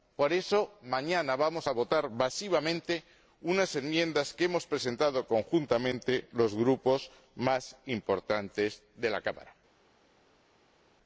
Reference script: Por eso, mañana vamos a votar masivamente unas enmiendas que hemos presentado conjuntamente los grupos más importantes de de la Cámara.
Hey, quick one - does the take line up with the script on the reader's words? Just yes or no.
no